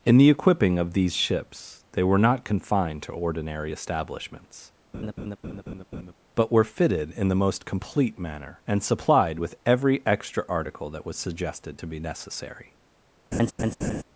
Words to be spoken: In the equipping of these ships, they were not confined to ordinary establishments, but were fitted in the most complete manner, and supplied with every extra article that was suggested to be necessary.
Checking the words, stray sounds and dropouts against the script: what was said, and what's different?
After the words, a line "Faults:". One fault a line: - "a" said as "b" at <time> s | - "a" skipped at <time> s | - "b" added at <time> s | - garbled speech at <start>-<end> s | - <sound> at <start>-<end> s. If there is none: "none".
In the equipping of these ships, they were not confined to ordinary establishments, but were fitted in the most complete manner, and supplied with every extra article that was suggested to be necessary.
Faults:
- laugh at 4.9-6.1 s
- laugh at 13.3-14.0 s